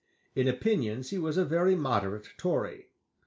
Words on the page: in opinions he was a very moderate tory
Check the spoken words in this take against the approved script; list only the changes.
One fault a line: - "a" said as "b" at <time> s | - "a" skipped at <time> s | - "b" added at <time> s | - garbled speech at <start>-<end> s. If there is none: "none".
none